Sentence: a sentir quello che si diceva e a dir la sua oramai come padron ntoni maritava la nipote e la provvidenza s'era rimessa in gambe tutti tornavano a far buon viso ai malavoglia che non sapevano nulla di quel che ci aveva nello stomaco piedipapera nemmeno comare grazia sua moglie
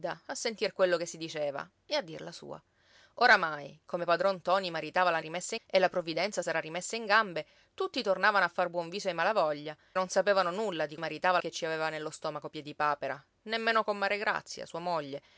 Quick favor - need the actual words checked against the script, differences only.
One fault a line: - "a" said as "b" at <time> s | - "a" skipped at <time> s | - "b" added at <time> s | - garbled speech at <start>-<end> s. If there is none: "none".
- "nipote" said as "rimessa" at 5.2 s
- "che" skipped at 9.8 s
- "quel" said as "maritava" at 11.0 s